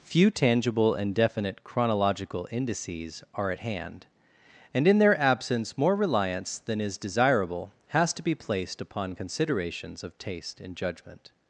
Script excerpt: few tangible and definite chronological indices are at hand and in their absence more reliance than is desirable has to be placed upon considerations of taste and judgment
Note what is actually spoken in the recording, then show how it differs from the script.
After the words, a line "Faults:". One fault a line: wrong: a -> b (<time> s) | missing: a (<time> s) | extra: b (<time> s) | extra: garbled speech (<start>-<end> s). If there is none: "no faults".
few tangible and definite chronological indices are at hand and in their absence more reliance than is desirable has to be placed upon considerations of taste and judgment
Faults:
no faults